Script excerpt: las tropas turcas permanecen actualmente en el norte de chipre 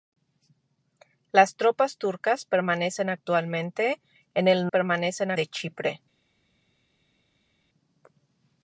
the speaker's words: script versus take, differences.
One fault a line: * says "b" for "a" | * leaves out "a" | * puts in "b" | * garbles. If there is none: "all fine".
* says "permanecen" for "norte"